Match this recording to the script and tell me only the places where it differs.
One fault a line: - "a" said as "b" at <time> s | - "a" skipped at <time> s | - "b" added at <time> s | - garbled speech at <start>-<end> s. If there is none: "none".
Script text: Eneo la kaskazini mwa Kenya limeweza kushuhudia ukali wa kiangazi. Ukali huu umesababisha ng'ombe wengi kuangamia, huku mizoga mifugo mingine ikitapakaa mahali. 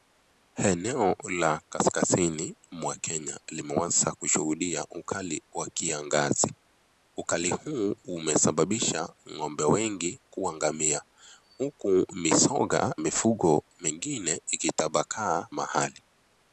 none